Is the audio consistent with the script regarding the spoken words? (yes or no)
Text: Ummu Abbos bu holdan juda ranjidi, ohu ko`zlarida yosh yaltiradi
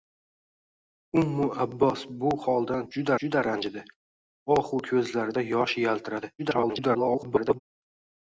no